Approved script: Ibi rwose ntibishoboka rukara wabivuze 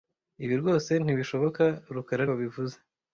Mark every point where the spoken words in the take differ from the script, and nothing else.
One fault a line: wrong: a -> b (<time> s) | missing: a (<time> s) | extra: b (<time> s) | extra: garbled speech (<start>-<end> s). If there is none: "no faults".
no faults